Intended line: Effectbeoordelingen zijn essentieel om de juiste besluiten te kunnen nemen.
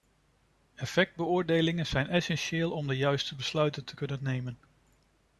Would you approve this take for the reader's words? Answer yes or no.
yes